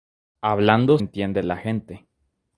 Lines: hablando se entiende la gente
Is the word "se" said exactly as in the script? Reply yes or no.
no